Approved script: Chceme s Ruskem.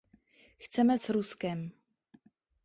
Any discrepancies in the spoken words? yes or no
no